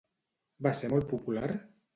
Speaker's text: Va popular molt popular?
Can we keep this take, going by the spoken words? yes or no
no